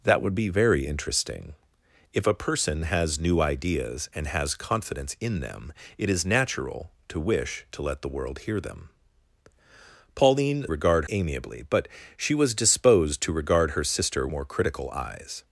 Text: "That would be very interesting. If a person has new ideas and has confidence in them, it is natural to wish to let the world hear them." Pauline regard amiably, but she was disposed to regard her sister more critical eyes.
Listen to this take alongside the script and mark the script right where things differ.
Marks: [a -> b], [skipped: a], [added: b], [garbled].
"That would be very interesting. If a person has new ideas and has confidence in them, it is natural to wish to let the world hear them." Pauline regard amiably, but she was disposed to regard her sister more critical eyes.